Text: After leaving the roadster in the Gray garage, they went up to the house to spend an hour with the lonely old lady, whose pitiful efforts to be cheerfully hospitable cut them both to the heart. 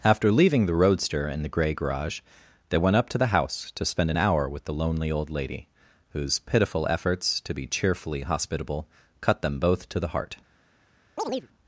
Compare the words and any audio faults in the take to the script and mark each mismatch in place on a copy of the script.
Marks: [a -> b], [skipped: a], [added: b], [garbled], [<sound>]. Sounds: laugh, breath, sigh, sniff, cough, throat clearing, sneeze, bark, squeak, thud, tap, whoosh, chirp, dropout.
After leaving the roadster in the Gray garage, they went up to the house to spend an hour with the lonely old lady, whose pitiful efforts to be cheerfully hospitable cut them both to the heart. [chirp]